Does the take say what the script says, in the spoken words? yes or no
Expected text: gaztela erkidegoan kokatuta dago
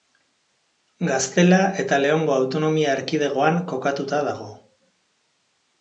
no